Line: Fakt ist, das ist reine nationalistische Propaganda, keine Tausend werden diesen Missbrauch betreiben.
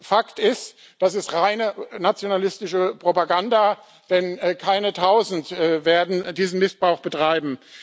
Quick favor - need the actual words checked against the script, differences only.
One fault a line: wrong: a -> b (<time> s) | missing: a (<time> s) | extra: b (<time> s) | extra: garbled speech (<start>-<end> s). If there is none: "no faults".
extra: denn (4.1 s)